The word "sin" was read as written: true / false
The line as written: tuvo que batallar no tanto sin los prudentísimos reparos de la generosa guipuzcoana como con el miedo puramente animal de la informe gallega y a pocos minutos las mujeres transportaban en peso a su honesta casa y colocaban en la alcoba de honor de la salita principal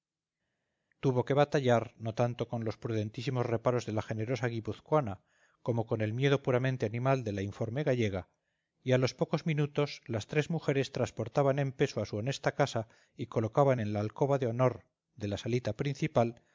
false